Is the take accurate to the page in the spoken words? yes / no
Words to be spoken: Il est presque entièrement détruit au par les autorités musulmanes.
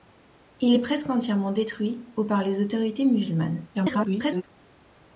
no